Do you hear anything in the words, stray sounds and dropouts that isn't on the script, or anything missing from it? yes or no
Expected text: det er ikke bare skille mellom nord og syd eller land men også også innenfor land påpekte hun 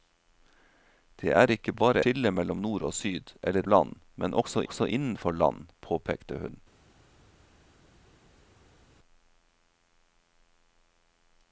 no